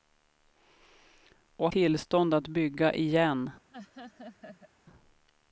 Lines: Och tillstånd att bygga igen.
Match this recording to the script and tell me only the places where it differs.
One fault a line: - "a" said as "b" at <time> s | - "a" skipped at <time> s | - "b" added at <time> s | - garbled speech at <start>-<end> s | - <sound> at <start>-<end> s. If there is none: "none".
- laugh at 3.7-4.7 s